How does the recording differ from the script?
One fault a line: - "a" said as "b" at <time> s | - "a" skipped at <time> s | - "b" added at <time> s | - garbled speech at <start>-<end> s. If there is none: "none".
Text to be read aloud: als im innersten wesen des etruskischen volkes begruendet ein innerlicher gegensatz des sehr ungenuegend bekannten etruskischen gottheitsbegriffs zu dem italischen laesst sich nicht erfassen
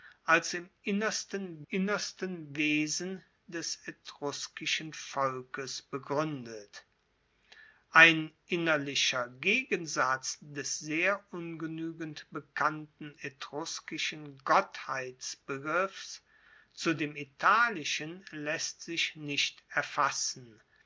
- "innersten" added at 1.7 s